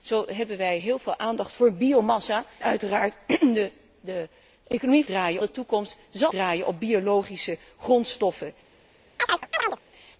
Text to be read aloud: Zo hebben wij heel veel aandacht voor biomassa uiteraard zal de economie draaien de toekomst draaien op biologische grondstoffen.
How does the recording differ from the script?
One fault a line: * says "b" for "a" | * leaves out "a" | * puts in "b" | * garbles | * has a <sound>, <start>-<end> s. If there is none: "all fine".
* has a chirp, 9.2-9.8 s